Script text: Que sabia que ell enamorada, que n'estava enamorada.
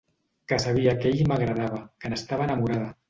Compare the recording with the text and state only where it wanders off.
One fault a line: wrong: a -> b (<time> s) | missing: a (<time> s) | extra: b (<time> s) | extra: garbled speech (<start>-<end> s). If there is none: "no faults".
wrong: enamorada -> m'agradava (1.3 s)